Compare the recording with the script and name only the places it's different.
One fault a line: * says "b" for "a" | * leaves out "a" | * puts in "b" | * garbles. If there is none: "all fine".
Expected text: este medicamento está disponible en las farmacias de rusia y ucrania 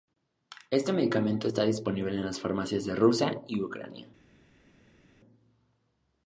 all fine